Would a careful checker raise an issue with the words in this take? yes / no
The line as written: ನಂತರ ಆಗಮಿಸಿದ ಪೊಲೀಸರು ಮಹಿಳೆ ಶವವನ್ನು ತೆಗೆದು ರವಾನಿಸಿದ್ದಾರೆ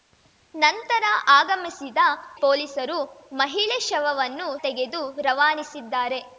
no